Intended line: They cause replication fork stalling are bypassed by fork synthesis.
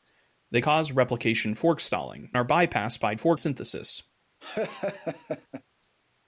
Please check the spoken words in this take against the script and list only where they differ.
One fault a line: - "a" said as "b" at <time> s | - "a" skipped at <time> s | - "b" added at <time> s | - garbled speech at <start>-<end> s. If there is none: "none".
none